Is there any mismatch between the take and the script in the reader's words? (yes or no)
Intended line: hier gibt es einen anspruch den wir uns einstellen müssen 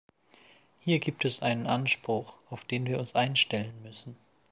yes